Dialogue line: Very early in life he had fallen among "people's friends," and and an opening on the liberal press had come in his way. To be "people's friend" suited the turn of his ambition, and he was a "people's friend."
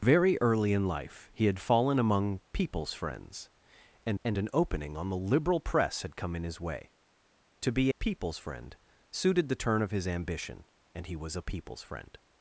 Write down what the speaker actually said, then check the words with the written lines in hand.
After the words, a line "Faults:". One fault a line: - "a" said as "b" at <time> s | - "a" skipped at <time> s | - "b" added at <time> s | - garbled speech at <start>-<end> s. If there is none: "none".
Very early in life he had fallen among "people's friends," and and an opening on the liberal press had come in his way. To be "people's friend" suited the turn of his ambition, and he was a "people's friend."
Faults:
none